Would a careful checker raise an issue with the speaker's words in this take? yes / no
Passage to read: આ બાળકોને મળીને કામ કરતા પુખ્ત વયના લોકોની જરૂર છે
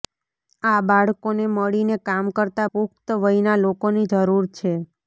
no